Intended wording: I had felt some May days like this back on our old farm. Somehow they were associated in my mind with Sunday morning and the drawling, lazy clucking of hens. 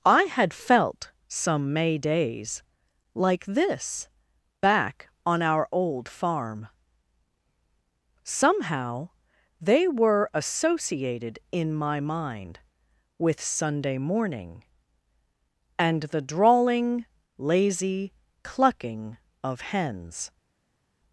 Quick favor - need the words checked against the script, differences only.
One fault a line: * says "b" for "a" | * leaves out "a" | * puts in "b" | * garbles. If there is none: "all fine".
all fine